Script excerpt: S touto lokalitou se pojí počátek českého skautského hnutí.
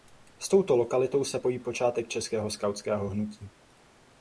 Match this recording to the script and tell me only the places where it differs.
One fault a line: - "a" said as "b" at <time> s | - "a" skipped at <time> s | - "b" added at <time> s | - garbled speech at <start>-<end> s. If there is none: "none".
none